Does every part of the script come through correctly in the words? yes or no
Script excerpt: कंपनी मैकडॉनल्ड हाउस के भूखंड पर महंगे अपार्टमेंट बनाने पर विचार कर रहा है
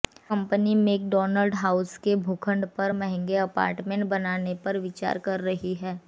no